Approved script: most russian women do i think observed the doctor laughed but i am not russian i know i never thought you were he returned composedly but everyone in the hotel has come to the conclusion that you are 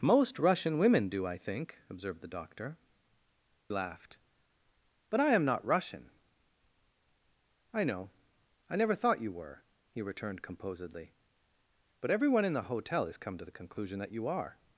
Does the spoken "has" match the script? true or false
true